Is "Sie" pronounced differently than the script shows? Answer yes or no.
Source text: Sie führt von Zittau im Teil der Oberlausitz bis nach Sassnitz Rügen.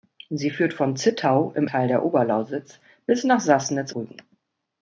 no